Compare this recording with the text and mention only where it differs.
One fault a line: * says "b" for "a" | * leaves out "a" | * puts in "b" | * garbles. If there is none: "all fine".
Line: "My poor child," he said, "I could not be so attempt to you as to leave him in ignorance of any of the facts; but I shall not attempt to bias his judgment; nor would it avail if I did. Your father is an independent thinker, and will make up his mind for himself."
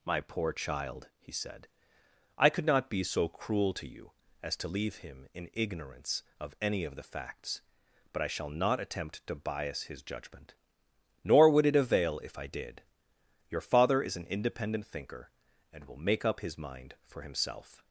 * says "cruel" for "attempt"